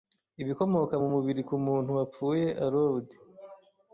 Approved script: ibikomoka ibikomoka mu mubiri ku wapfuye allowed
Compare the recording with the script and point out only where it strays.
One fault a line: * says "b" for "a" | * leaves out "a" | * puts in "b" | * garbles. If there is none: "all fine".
* leaves out "ibikomoka"
* puts in "muntu"